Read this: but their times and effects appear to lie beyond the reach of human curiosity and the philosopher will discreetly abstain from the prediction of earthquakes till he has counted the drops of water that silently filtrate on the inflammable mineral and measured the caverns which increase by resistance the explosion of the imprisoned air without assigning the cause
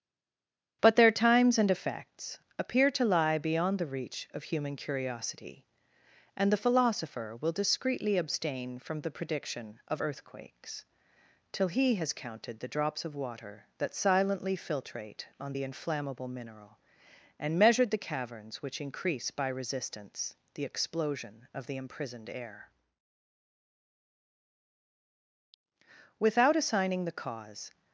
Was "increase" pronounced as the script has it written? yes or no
yes